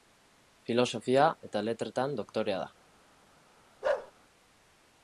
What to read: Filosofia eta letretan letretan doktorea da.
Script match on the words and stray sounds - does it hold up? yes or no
no